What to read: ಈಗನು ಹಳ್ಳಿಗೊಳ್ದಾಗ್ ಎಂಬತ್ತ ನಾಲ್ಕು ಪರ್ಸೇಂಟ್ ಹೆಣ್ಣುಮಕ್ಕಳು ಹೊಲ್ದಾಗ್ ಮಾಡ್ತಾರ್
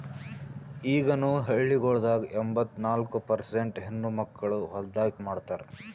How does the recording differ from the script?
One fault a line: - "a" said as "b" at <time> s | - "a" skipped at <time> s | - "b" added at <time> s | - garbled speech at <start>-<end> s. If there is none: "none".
none